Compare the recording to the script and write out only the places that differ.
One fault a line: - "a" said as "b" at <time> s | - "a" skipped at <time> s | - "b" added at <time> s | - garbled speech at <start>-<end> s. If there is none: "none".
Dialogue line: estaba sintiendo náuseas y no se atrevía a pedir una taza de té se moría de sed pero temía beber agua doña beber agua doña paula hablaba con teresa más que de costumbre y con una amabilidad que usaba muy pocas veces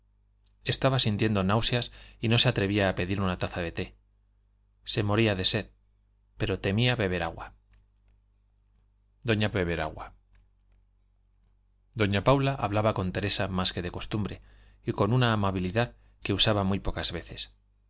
none